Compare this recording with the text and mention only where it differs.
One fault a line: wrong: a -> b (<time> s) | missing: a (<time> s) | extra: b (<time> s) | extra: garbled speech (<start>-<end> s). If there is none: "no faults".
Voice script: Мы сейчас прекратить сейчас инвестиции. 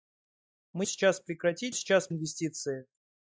no faults